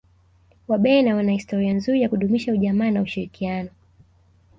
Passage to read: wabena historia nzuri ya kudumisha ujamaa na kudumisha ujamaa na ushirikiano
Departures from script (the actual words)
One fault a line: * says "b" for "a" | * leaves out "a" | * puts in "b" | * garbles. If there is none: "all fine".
* puts in "wana"
* leaves out "kudumisha ujamaa na"